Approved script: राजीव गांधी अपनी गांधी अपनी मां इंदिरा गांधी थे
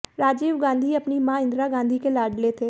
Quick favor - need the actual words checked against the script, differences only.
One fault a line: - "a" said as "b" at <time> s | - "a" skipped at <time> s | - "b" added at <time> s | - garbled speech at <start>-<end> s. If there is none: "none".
- "गांधी अपनी" skipped at 1.2 s
- "के लाडले" added at 2.0 s